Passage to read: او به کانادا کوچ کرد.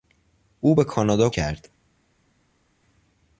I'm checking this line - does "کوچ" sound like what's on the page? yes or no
no